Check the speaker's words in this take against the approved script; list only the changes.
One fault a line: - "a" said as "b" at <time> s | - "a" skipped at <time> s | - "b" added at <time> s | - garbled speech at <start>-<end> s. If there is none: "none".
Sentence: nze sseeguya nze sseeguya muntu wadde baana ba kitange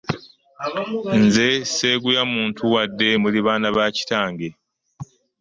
- "nze sseeguya" skipped at 2.2 s
- "muli" added at 3.2 s